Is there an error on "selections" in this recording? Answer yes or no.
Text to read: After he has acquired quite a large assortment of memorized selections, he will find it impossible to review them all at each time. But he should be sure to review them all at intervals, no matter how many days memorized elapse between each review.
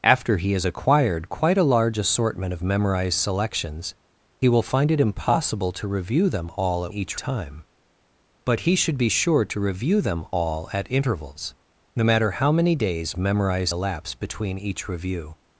no